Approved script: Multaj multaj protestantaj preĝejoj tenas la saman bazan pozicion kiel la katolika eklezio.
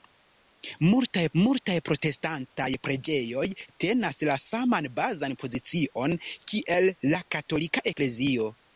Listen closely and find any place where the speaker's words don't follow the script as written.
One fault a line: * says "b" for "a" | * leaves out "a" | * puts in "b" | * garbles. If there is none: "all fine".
all fine